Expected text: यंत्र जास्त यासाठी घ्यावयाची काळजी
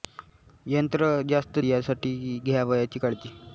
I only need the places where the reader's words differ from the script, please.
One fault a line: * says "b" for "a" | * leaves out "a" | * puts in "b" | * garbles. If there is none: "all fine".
all fine